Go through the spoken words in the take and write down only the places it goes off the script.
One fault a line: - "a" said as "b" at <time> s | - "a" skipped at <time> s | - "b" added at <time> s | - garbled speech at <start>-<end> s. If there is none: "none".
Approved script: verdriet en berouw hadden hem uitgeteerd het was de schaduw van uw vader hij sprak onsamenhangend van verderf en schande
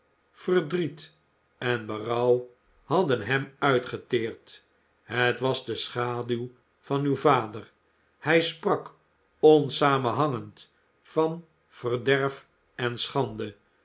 none